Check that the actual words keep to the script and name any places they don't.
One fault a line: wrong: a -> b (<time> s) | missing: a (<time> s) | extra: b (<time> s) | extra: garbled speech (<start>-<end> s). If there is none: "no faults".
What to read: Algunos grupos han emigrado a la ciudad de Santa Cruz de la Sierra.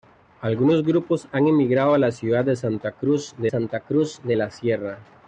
extra: Santa Cruz de (3.5 s)